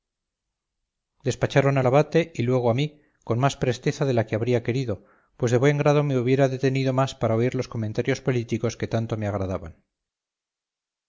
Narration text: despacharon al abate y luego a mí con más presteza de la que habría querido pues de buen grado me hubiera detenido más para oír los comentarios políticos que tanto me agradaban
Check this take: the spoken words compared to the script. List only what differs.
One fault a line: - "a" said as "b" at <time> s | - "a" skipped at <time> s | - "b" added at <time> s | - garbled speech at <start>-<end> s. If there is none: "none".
none